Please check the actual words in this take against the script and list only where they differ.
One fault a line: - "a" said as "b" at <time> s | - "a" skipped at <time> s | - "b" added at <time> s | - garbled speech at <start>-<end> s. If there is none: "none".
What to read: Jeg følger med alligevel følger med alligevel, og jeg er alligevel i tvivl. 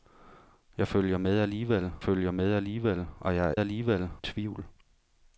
none